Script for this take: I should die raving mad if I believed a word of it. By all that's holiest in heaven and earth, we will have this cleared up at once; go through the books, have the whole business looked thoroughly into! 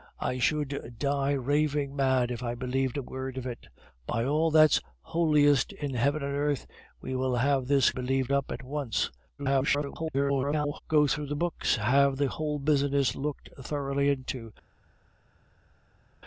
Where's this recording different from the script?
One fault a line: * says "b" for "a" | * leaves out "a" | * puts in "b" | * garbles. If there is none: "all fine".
* says "believed" for "cleared"
* garbles